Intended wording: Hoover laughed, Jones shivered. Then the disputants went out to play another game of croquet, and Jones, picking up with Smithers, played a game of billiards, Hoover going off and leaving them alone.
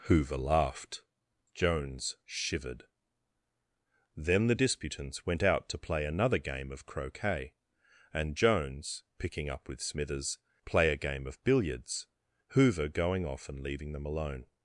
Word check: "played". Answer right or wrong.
wrong